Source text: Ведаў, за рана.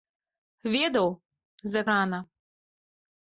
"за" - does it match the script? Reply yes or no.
yes